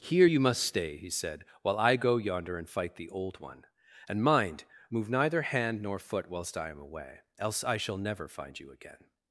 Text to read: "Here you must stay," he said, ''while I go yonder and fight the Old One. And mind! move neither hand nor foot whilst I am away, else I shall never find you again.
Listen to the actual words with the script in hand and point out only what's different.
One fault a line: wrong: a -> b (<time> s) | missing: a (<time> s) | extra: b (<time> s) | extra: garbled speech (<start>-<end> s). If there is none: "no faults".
no faults